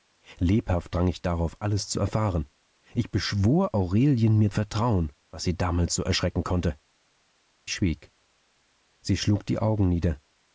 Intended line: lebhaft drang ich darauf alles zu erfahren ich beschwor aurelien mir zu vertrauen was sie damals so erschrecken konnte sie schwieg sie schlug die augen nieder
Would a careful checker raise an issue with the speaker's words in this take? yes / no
yes